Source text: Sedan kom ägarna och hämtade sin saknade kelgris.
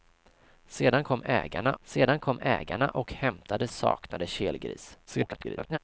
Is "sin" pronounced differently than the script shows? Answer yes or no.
yes